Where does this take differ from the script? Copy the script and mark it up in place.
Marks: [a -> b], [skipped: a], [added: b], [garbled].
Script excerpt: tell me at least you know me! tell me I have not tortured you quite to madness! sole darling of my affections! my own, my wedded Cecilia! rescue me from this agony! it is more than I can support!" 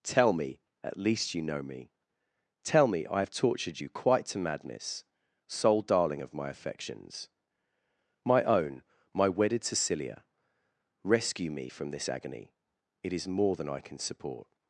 tell me at least you know me! tell me I have [skipped: not] tortured you quite to madness! sole darling of my affections! my own, my wedded Cecilia! rescue me from this agony! it is more than I can support!"